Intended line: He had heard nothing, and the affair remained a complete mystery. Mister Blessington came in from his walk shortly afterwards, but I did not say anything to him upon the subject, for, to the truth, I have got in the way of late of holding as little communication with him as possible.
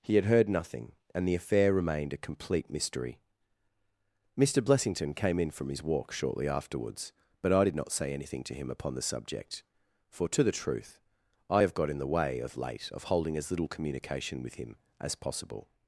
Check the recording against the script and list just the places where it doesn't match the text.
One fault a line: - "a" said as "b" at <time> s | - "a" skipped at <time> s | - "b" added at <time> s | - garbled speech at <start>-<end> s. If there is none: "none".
none